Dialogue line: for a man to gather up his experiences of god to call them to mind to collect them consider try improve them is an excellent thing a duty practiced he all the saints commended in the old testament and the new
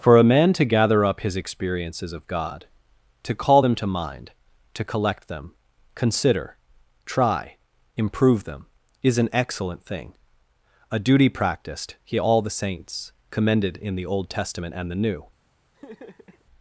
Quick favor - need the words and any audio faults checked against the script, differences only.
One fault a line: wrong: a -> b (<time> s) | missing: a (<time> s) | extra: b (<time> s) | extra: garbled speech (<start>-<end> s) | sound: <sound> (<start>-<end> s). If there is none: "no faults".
sound: laugh (15.7-16.4 s)